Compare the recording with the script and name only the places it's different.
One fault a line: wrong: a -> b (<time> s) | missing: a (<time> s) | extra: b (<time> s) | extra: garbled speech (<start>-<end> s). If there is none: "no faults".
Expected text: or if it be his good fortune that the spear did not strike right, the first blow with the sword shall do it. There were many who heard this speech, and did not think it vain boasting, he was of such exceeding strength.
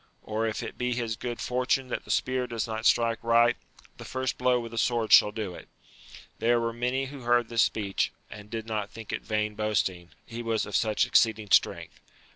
wrong: did -> does (2.5 s)